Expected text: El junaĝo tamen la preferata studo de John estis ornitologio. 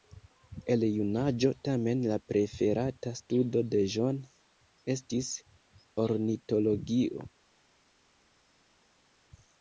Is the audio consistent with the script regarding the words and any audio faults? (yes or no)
yes